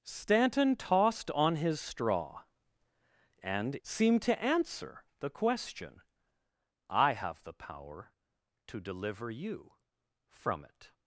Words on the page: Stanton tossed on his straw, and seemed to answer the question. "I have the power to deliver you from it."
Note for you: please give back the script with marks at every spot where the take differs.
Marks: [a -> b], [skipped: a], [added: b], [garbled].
Stanton tossed on his straw, and seemed to answer the question. "I have the power to deliver you from it."